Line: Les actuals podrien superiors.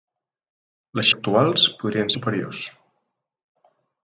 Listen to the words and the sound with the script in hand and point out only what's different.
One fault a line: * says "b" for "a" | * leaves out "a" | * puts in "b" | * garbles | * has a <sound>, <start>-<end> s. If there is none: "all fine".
all fine